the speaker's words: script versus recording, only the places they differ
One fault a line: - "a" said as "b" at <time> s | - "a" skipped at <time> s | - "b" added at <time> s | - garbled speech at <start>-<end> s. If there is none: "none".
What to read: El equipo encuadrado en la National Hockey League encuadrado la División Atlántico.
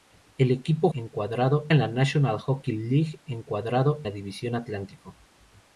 none